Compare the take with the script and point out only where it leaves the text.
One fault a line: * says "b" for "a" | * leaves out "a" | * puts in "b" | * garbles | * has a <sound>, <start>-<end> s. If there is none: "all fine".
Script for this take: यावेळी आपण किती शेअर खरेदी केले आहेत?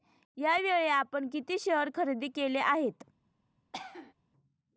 * has a cough, 3.7-4.1 s